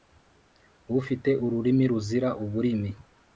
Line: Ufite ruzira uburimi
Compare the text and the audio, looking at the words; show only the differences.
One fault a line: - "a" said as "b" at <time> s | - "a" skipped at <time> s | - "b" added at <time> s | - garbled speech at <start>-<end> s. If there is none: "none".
- "ururimi" added at 1.4 s